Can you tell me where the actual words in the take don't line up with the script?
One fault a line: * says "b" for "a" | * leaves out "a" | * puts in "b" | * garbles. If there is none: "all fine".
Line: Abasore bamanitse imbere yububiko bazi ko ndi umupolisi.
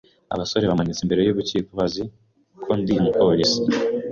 all fine